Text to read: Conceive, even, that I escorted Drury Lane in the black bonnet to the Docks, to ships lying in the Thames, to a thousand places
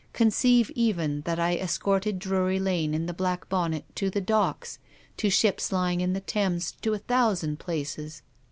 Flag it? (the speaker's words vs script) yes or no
no